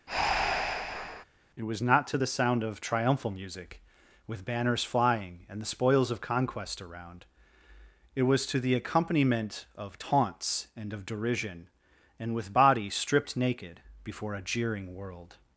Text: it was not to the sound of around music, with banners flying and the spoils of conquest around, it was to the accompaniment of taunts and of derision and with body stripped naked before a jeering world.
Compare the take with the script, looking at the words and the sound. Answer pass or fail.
fail